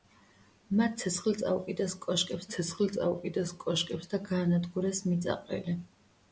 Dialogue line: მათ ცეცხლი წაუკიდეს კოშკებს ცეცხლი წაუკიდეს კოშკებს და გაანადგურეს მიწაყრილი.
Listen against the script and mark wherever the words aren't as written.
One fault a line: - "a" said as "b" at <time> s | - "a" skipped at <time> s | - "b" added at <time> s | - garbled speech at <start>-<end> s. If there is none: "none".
none